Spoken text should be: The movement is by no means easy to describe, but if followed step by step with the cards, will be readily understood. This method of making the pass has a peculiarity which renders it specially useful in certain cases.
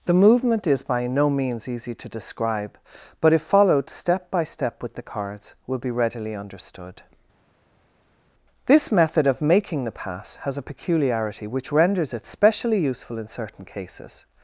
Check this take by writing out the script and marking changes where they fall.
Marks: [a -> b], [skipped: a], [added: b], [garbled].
The movement is by no means easy to describe, but if followed step by step with the cards, will be readily understood. This method of making the pass has a peculiarity which renders it specially useful in certain cases.